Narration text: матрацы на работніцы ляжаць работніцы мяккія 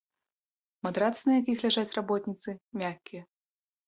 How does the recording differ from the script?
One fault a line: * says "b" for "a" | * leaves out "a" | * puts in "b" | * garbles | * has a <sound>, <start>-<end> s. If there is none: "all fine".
* says "якіх" for "работніцы"